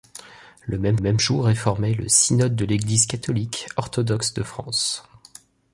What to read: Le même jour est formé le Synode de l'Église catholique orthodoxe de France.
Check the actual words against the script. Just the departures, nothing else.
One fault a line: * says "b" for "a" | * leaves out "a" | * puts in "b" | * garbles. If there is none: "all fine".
* puts in "même"